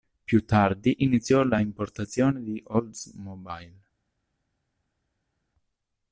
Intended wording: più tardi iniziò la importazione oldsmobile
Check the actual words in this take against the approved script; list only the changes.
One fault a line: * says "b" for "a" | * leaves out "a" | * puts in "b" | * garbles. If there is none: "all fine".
* puts in "di"